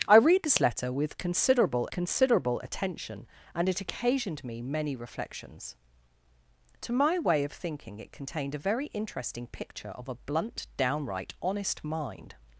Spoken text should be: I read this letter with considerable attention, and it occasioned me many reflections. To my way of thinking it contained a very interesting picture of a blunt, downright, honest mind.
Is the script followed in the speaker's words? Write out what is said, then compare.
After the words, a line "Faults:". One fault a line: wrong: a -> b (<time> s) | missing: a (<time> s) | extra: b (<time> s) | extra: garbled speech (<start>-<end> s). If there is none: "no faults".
I read this letter with considerable considerable attention, and it occasioned me many reflections. To my way of thinking it contained a very interesting picture of a blunt, downright, honest mind.
Faults:
extra: considerable (1.9 s)